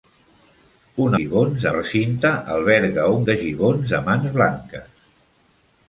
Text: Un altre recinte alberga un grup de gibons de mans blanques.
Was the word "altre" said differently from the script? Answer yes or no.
yes